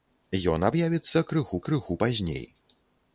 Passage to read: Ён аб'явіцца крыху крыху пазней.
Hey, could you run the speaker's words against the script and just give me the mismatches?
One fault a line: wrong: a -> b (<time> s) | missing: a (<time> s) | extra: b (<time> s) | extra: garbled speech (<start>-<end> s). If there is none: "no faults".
no faults